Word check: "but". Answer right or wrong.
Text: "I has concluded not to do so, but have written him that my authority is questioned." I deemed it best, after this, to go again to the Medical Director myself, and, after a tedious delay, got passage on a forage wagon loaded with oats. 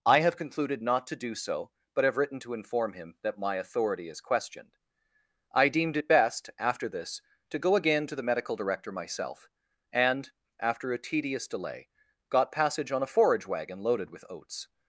right